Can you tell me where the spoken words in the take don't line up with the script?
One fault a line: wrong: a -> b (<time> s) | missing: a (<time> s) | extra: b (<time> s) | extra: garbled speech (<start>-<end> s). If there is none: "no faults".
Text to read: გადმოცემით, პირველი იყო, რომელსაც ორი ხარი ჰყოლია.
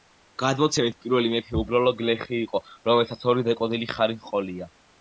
extra: მეფე უბრალო გლეხი (1.4 s)
extra: დაკოდილი (3.5 s)